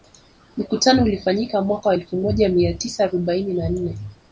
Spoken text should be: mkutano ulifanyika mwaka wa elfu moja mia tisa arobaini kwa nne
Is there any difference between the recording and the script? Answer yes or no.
yes